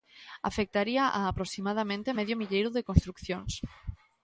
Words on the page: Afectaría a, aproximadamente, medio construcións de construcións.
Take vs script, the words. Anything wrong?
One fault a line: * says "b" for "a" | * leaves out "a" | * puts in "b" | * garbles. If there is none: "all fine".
* says "milleiro" for "construcións"